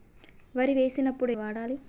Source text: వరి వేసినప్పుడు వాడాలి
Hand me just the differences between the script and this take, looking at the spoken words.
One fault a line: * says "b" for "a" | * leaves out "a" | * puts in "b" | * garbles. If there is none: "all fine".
all fine